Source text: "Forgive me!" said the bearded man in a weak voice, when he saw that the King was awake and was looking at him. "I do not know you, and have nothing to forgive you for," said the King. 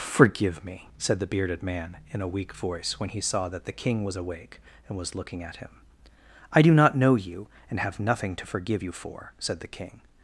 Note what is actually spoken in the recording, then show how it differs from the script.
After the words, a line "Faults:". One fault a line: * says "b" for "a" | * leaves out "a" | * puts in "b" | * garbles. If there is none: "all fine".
"Forgive me!" said the bearded man in a weak voice, when he saw that the King was awake and was looking at him. "I do not know you, and have nothing to forgive you for," said the King.
Faults:
all fine